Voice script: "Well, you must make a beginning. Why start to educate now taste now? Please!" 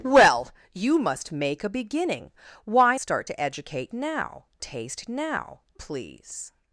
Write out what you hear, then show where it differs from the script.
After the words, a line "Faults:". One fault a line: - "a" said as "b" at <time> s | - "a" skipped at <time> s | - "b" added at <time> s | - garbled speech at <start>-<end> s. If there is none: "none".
"Well, you must make a beginning. Why start to educate now taste now? Please!"
Faults:
none